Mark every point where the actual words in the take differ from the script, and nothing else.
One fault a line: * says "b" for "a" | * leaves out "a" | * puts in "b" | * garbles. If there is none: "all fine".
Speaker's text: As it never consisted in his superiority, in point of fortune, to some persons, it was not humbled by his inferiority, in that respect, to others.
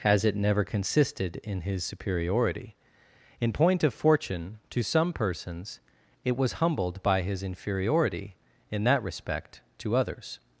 * leaves out "not"